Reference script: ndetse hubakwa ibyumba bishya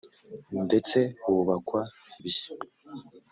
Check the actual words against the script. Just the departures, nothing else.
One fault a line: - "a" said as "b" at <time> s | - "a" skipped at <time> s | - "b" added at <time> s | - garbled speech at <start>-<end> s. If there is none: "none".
- "ibyumba" skipped at 1.8 s